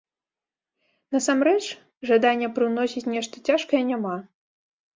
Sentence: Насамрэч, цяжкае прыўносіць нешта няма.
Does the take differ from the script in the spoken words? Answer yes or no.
yes